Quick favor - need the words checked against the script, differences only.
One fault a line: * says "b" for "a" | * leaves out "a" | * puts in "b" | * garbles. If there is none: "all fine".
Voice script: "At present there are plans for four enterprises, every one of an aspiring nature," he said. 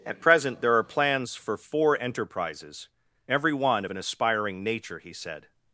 all fine